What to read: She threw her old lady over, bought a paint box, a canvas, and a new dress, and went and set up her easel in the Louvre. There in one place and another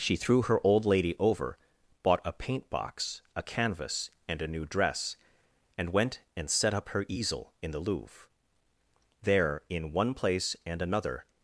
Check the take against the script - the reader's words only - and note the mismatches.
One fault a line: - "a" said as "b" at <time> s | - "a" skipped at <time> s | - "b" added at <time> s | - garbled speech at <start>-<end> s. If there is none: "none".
none